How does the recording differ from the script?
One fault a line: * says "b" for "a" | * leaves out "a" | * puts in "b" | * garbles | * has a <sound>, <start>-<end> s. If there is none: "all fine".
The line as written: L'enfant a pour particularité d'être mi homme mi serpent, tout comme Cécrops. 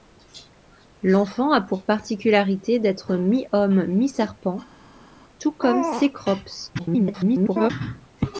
* garbles